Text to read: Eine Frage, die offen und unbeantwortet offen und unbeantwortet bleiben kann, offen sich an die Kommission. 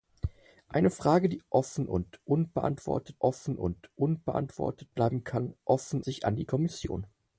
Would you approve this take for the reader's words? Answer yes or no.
yes